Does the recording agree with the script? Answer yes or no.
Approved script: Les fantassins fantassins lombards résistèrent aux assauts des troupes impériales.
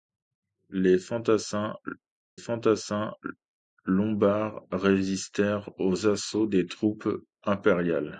yes